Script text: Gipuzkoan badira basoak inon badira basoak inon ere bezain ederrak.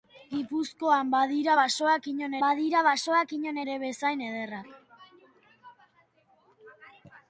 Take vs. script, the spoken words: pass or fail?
pass